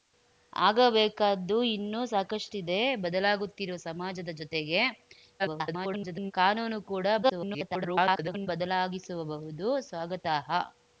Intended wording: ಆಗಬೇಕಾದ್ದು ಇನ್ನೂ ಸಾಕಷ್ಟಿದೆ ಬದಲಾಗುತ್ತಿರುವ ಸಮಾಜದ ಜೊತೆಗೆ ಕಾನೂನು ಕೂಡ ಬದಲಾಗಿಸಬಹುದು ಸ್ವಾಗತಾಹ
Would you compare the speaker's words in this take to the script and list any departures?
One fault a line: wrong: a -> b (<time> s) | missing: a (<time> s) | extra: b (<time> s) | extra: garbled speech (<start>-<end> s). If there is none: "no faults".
extra: garbled speech (5.4-6.3 s)
extra: garbled speech (7.2-8.5 s)